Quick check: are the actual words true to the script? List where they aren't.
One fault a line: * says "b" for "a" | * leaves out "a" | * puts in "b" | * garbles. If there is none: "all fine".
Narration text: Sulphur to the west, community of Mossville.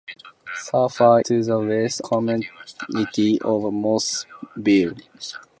all fine